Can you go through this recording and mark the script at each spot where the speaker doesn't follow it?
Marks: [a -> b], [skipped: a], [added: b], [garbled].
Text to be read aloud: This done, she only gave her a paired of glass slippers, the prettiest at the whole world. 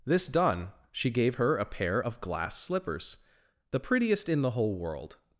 This done, she [skipped: only] gave her a [paired -> pair] of glass slippers, the prettiest [at -> in] the whole world.